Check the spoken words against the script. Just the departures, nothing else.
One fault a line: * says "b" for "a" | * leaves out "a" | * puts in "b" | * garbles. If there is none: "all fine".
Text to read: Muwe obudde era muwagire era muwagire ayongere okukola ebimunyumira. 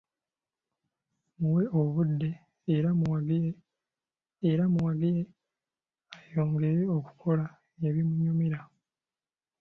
all fine